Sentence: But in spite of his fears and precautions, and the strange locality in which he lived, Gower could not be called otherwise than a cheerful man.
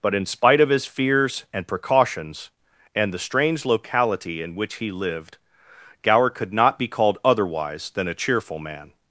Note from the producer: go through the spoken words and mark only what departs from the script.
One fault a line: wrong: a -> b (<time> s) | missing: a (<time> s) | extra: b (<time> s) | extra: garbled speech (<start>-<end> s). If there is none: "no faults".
no faults